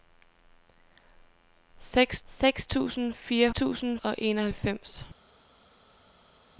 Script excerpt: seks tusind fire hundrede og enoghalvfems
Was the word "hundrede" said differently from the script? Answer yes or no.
yes